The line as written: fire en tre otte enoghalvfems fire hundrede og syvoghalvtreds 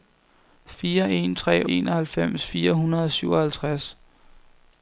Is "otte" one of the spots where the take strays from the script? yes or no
yes